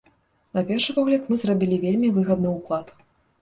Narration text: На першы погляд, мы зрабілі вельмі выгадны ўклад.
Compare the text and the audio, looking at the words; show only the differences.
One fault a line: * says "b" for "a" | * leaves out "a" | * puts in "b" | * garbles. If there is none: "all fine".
all fine